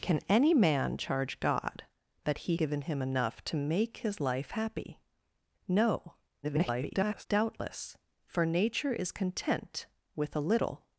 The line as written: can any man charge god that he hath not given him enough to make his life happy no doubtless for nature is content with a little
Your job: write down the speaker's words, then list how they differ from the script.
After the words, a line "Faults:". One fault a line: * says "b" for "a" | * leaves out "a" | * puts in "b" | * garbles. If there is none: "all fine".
can any man charge god that he given him enough to make his life happy no [garbled] doubtless for nature is content with a little
Faults:
* leaves out "hath not"
* garbles